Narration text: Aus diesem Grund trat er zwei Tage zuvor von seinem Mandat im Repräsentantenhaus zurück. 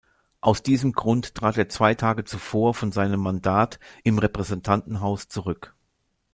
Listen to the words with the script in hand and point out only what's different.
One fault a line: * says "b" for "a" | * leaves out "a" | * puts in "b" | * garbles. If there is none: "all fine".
all fine